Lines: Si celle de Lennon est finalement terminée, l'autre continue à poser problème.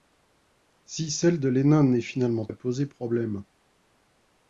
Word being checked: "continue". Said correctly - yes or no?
no